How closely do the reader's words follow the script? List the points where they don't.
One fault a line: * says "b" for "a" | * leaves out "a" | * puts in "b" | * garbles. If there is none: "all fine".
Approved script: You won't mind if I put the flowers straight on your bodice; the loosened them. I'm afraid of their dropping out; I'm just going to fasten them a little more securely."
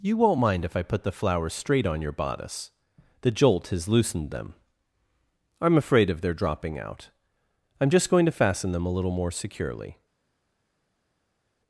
* puts in "jolt has"